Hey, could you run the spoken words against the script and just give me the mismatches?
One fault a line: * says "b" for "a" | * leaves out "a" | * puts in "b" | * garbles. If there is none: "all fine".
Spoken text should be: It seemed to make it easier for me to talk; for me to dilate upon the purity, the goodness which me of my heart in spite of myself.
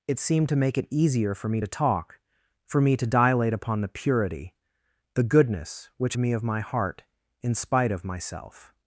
all fine